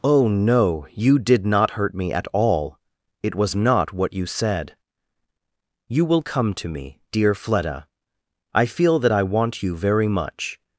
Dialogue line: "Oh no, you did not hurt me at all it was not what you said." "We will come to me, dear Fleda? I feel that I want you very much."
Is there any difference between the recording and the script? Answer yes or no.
yes